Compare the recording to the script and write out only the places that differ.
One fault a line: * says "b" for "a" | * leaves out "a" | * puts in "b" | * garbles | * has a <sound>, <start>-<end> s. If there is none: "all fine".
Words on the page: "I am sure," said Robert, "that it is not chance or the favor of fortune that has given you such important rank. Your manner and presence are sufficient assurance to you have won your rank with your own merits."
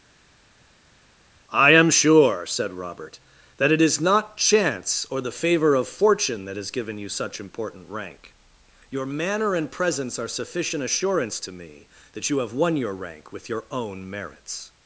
* puts in "me that"